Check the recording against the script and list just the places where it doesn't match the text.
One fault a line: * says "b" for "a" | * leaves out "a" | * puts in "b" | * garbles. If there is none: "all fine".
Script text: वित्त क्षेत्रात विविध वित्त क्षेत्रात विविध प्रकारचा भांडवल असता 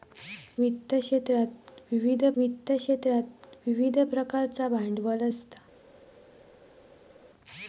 all fine